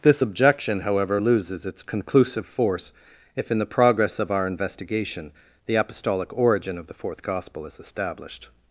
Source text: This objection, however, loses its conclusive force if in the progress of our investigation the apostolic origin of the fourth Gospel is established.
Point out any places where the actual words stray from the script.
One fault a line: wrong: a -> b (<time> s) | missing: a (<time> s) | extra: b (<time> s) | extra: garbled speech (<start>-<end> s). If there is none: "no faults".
no faults